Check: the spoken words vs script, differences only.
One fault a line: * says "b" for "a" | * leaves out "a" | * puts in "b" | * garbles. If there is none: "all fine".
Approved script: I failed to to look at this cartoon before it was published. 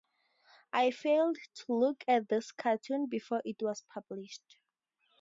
* leaves out "to"